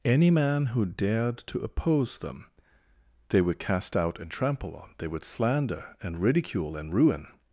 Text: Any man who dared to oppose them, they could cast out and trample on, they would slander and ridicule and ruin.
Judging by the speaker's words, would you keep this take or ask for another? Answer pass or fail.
fail